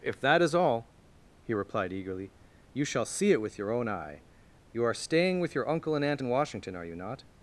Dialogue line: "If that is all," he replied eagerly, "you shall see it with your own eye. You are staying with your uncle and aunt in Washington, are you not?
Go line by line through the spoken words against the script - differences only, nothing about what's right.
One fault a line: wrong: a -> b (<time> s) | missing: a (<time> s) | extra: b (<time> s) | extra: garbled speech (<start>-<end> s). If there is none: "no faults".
no faults